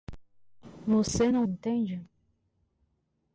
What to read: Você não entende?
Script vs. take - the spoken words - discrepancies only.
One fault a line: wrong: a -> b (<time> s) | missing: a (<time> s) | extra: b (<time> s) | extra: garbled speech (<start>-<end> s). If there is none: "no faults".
no faults